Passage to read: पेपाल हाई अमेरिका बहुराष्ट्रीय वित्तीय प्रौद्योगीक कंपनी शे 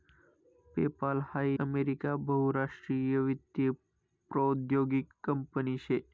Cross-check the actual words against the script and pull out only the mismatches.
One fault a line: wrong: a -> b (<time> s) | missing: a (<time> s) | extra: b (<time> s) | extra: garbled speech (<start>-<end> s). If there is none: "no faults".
no faults